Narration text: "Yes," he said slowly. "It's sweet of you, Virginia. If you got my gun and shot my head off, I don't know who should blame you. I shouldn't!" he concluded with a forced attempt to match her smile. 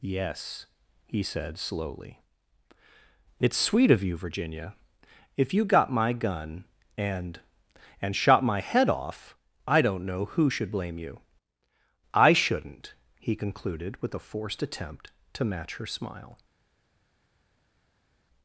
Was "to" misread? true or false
false